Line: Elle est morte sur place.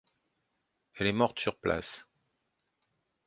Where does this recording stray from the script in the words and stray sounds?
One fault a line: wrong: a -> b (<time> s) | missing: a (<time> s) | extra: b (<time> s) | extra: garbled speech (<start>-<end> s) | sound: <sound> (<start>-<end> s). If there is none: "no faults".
no faults